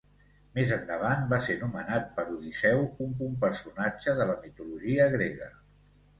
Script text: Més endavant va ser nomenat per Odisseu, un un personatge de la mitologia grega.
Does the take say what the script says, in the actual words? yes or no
yes